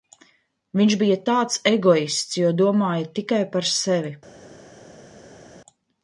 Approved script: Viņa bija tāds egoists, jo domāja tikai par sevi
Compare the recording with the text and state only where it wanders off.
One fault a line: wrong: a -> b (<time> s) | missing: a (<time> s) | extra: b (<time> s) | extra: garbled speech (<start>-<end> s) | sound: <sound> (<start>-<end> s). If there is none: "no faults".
wrong: Viņa -> Viņš (0.8 s)